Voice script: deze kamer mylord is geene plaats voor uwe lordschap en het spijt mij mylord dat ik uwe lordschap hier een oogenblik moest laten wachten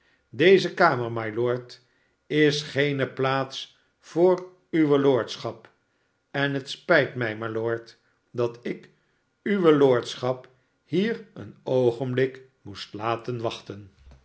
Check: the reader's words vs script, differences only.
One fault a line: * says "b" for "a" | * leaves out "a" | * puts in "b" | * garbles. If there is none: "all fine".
all fine